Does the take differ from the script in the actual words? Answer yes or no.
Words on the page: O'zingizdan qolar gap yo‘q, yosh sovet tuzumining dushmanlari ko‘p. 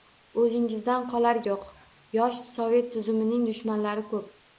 yes